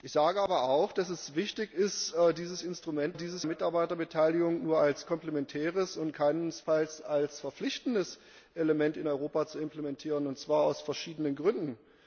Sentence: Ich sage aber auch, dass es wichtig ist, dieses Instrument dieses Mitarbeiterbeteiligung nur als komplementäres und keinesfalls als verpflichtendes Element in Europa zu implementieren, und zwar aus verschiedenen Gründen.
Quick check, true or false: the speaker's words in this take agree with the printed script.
true